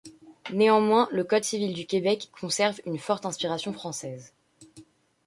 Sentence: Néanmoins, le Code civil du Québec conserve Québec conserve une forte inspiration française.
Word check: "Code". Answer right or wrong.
right